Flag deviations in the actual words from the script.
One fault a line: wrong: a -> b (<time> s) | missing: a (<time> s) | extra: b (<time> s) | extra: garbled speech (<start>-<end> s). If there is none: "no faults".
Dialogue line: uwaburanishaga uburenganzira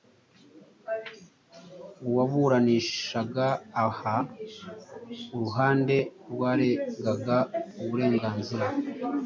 extra: aha uruhande rwaregaga (3.9 s)